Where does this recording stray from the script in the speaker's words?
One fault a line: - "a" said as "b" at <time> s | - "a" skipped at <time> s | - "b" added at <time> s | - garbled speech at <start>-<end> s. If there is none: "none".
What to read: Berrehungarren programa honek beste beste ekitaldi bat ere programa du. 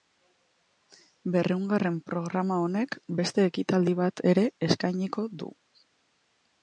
- "beste" skipped at 3.5 s
- "programa" said as "eskainiko" at 4.7 s